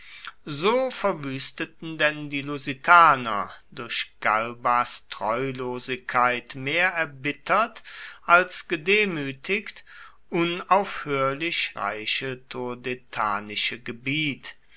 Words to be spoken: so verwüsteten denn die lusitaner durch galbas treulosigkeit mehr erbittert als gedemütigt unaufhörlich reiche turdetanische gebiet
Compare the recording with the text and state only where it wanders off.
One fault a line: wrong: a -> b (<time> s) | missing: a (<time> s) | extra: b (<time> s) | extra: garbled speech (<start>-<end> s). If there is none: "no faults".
no faults